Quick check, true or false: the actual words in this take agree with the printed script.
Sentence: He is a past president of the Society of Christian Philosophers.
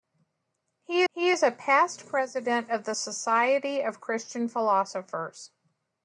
false